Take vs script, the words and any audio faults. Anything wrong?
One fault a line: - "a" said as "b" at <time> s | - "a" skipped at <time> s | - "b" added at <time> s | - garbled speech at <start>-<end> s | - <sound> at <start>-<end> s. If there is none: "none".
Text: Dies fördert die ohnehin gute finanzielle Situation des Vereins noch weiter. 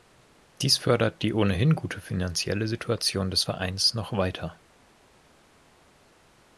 none